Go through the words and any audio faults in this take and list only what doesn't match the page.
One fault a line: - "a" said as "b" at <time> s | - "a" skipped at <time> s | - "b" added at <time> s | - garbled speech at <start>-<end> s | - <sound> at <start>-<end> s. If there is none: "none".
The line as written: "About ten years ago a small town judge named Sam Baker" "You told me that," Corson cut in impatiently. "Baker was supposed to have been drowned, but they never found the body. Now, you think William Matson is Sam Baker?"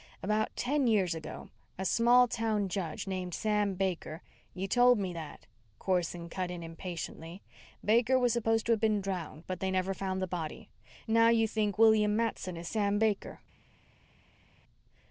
none